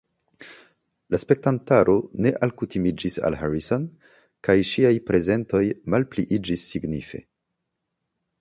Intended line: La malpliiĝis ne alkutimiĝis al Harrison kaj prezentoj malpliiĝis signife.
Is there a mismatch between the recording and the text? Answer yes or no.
yes